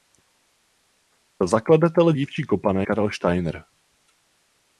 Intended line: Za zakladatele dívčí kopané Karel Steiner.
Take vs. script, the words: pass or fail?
pass